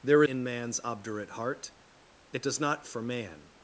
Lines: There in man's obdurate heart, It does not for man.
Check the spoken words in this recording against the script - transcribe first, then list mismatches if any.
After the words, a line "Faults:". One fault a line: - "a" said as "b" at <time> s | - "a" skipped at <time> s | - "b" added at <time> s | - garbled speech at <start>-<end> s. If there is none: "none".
There in man's obdurate heart, It does not for man.
Faults:
none